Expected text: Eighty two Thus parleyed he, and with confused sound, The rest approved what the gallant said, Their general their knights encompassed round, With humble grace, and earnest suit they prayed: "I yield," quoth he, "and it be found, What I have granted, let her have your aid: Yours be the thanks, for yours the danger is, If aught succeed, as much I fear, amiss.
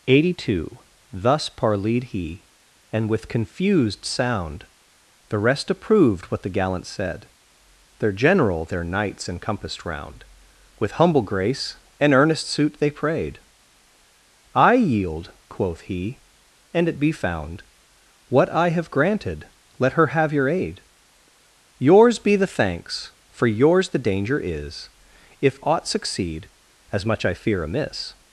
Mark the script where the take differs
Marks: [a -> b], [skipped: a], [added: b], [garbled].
Eighty two Thus parleyed he, and with confused sound, The rest approved what the gallant said, Their general their knights encompassed round, With humble grace, and earnest suit they prayed: "I yield," quoth he, "and it be found, What I have granted, let her have your aid: Yours be the thanks, for yours the danger is, If aught succeed, as much I fear, amiss.